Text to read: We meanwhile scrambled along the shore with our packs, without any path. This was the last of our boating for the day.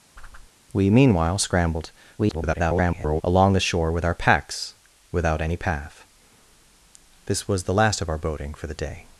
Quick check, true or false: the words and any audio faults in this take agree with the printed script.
false